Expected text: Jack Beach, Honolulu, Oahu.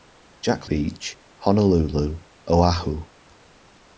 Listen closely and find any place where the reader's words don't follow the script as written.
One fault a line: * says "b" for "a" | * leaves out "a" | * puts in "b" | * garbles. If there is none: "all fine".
all fine